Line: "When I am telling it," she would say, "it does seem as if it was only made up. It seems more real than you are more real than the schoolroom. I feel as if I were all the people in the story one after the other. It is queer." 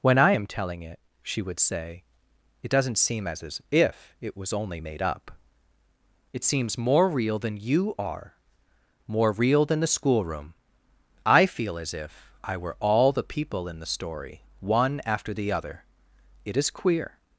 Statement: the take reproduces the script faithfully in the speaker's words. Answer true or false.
false